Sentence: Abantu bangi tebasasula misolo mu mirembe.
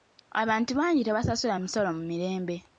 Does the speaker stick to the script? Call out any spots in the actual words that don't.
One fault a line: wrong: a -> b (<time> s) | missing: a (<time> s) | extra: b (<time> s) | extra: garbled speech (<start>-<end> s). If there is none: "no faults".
no faults